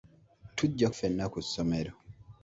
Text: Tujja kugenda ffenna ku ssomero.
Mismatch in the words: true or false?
true